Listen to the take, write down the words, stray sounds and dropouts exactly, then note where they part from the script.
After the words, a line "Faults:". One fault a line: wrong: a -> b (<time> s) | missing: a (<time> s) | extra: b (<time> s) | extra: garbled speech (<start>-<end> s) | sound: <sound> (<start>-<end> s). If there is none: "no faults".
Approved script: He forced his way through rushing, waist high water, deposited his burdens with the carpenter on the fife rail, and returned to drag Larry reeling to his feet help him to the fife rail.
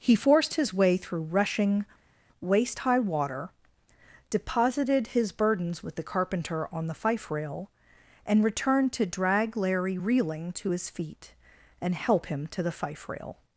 He forced his way through rushing, waist high water, deposited his burdens with the carpenter on the fife rail, and returned to drag Larry reeling to his feet and help him to the fife rail.
Faults:
extra: and (11.8 s)